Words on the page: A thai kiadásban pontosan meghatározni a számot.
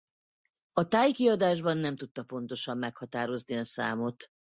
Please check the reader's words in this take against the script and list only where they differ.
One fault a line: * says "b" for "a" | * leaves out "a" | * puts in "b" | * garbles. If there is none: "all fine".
* puts in "nem tudta"